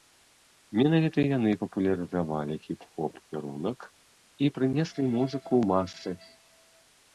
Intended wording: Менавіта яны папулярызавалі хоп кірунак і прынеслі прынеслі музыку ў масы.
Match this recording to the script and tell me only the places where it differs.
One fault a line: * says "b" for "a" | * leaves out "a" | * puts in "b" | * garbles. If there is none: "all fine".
* puts in "хіп"
* leaves out "прынеслі"